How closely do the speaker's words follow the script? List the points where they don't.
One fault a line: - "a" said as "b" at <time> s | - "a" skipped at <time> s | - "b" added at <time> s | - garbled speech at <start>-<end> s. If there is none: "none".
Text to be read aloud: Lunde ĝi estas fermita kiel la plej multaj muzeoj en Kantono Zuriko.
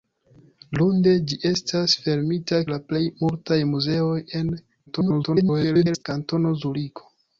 - "kiel" skipped at 2.6 s
- garbled speech at 4.9-6.0 s